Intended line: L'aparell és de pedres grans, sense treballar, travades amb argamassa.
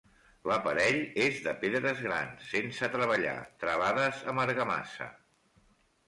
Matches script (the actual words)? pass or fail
pass